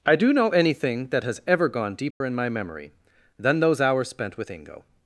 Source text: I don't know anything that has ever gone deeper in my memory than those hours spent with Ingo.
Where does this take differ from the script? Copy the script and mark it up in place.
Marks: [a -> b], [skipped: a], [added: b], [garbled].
I [don't -> do] know anything that has ever gone deeper in my memory than those hours spent with Ingo.